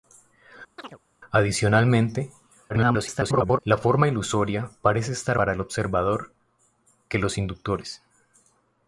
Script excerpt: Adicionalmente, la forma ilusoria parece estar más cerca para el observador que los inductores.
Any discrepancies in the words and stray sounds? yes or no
yes